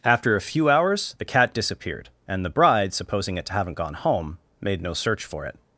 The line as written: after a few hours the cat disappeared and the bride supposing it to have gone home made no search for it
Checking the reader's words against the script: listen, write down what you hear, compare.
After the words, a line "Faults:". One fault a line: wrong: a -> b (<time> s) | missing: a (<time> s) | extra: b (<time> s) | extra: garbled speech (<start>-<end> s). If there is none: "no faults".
after a few hours the cat disappeared and the bride supposing it to haven't gone home made no search for it
Faults:
wrong: have -> haven't (3.5 s)